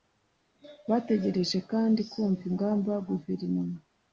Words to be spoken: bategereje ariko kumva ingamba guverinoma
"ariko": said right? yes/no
no